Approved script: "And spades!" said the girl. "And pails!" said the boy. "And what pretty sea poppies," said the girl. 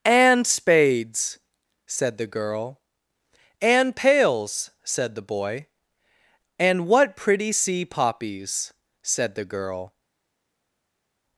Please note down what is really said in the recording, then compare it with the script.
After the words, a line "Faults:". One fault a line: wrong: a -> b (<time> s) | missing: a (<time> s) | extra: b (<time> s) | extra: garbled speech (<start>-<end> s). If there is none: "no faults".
"And spades!" said the girl. "And pails!" said the boy. "And what pretty sea poppies," said the girl.
Faults:
no faults